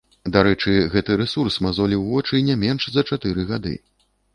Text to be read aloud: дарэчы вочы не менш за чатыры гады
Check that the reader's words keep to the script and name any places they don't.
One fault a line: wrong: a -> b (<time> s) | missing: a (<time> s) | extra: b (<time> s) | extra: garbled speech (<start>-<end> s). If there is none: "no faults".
extra: гэты рэсурс мазоліў (0.9 s)